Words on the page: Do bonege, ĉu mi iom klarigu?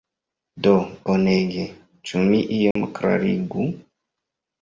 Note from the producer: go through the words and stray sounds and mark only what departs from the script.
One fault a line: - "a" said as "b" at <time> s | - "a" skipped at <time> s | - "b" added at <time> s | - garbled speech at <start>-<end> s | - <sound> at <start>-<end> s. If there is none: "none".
- dropout at 2.7-2.8 s